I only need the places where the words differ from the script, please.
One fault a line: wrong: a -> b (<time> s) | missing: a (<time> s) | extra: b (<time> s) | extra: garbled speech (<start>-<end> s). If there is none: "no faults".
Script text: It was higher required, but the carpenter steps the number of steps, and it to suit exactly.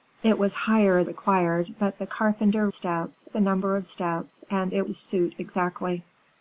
no faults